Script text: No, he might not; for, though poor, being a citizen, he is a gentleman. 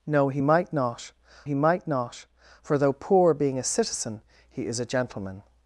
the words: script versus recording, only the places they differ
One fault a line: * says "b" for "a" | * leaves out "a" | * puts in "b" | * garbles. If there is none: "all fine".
* puts in "he might not"